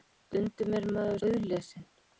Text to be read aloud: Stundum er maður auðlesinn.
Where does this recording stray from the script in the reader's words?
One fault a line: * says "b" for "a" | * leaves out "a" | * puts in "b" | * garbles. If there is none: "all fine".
all fine